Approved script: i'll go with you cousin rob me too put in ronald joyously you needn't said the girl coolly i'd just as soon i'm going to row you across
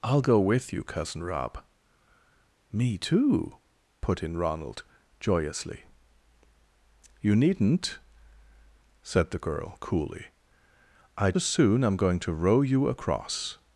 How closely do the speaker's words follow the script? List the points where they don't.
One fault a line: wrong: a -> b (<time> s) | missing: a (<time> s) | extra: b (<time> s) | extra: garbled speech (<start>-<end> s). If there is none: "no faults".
missing: just (11.4 s)